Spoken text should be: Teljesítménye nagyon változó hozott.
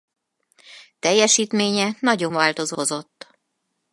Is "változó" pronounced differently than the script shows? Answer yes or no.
no